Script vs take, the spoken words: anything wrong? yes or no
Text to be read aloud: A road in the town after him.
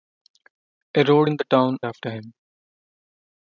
no